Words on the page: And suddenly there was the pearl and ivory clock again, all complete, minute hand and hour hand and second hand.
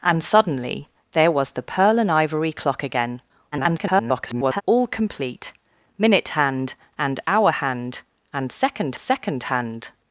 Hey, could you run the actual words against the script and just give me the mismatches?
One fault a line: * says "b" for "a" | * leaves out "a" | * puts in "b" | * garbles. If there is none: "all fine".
* garbles
* puts in "second"